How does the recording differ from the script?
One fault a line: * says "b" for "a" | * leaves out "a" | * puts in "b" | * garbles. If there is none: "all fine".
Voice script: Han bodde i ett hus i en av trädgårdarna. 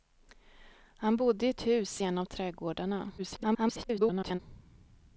* garbles